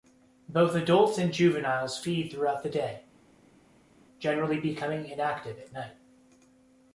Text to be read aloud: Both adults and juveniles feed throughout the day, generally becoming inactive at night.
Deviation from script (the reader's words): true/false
false